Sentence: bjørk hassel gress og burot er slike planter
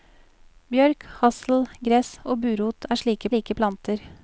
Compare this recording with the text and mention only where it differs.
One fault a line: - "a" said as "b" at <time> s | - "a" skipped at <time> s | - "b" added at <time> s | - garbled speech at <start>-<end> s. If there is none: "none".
- "slike" added at 3.3 s